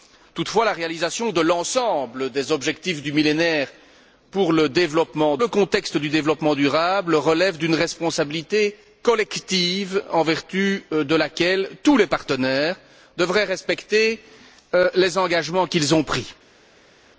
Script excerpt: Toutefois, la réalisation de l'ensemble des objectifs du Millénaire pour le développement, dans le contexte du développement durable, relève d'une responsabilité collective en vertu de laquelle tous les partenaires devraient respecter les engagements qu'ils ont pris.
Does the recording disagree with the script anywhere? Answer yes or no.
yes